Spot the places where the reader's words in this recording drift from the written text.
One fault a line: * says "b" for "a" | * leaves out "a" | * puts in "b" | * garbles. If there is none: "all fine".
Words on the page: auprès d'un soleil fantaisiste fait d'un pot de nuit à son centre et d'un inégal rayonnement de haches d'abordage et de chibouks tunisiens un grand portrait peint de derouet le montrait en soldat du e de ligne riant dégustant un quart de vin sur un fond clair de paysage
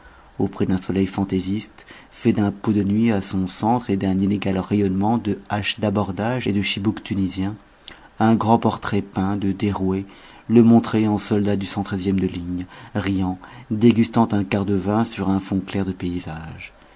all fine